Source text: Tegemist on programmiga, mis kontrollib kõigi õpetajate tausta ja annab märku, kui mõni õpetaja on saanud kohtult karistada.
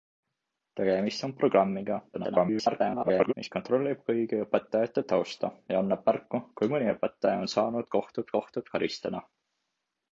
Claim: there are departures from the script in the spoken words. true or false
true